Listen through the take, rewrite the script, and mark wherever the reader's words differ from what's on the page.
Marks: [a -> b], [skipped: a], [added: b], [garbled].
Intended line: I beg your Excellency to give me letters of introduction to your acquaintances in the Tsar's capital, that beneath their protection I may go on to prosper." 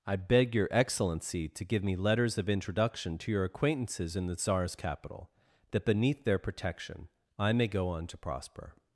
I beg your Excellency to give me letters of introduction to your acquaintances in the Tsar's capital, that beneath their protection I may go on to prosper."